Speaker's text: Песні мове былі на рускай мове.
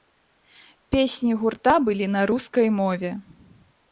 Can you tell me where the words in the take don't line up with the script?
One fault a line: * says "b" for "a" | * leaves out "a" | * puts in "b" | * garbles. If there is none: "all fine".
* says "гурта" for "мове"